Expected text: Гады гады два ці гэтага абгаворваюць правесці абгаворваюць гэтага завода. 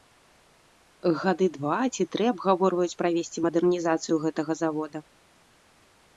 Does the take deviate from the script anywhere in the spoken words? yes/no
yes